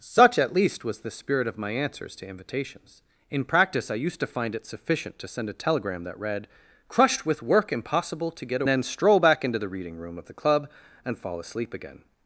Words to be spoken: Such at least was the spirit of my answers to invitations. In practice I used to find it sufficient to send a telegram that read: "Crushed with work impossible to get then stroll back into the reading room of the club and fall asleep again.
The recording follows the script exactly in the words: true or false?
true